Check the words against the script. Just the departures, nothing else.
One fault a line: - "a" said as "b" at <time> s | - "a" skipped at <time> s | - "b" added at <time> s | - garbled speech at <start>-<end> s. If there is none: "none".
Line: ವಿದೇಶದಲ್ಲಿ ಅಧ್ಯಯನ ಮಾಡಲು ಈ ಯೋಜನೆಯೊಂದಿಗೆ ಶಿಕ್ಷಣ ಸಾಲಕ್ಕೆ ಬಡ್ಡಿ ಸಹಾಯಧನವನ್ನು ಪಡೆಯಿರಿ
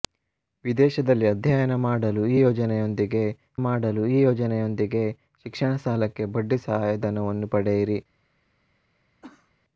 - "ಮಾಡಲು ಈ ಯೋಜನೆಯೊಂದಿಗೆ" added at 3.6 s